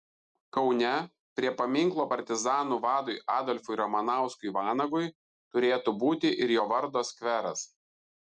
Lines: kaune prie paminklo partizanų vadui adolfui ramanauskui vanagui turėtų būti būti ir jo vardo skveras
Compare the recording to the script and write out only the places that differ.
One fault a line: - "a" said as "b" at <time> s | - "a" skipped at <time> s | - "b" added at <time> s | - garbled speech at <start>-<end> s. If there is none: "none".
- "būti" skipped at 6.3 s